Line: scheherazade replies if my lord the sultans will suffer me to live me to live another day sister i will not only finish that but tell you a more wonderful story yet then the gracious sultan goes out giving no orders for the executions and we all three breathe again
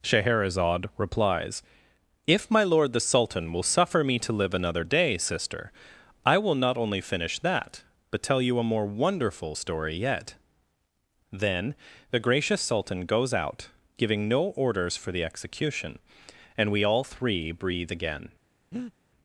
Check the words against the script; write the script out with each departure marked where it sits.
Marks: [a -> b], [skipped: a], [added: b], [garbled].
scheherazade replies if my lord the [sultans -> sultan] will suffer me to live [skipped: me to live] another day sister i will not only finish that but tell you a more wonderful story yet then the gracious sultan goes out giving no orders for the [executions -> execution] and we all three breathe again